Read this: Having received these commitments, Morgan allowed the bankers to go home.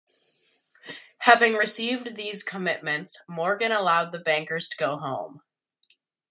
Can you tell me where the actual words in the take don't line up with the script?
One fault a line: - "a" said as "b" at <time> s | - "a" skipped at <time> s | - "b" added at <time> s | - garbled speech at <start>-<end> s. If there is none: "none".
none